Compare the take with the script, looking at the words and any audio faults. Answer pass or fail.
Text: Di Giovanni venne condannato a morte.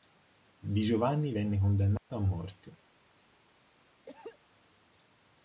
fail